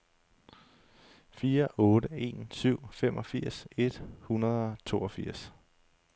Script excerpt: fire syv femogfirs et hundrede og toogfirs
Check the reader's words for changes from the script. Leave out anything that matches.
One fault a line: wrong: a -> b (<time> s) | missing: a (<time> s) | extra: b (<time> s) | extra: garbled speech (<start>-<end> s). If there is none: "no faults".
extra: otte en (1.8 s)